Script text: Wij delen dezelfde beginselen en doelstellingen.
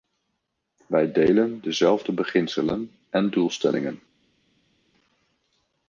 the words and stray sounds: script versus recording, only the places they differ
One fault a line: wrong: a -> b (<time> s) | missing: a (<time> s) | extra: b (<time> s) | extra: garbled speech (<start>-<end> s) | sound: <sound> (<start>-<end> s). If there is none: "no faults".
no faults